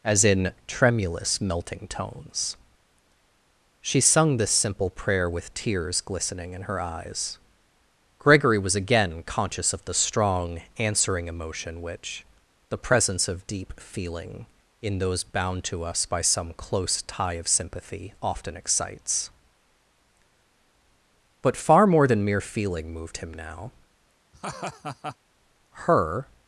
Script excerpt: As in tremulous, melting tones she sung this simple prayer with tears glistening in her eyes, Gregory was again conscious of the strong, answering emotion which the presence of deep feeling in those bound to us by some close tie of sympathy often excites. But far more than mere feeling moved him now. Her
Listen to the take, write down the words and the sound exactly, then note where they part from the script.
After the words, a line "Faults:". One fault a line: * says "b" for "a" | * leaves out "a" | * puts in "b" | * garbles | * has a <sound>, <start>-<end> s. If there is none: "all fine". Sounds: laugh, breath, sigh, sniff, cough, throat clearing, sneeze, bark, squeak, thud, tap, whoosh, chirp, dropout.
As in tremulous, melting tones she sung this simple prayer with tears glistening in her eyes, Gregory was again conscious of the strong, answering emotion which the presence of deep feeling in those bound to us by some close tie of sympathy often excites. But far more than mere feeling moved him now. Her
Faults:
* has a laugh, 24.3-25.2 s